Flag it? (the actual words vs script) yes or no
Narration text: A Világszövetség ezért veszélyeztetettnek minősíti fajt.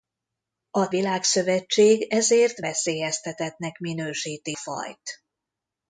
no